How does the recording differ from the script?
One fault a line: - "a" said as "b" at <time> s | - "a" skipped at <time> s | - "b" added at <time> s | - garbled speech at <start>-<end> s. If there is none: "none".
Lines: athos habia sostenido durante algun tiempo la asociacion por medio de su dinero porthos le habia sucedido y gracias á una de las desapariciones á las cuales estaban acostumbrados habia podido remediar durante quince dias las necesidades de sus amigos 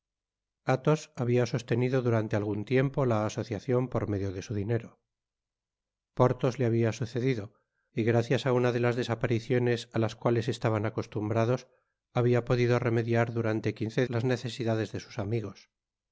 - "dias" skipped at 14.0 s